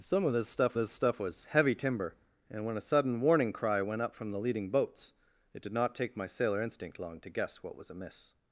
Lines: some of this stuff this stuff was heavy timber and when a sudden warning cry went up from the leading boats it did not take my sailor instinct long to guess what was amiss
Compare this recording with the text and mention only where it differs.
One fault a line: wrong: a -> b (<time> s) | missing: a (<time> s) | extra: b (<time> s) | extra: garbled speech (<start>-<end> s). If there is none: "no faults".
no faults